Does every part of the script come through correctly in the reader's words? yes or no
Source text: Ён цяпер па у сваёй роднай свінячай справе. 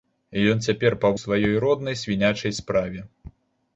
yes